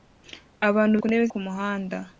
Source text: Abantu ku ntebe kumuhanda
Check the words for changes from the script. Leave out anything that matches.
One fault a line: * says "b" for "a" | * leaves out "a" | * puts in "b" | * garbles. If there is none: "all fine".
all fine